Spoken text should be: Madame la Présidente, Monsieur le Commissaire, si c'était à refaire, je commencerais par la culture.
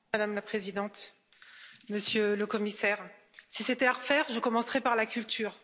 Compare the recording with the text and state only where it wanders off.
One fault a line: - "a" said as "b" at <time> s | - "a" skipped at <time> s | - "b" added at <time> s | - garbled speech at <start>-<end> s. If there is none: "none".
none